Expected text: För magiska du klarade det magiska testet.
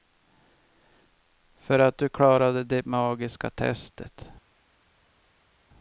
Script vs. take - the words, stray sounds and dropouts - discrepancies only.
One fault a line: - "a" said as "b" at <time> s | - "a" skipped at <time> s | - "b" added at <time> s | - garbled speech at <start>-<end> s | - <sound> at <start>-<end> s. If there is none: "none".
- "magiska" said as "att" at 1.8 s